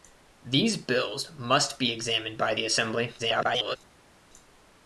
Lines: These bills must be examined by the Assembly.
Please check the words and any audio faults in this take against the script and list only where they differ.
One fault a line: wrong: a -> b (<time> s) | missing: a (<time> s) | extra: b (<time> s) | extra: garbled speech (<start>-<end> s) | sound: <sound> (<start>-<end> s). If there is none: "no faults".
extra: garbled speech (3.2-3.8 s)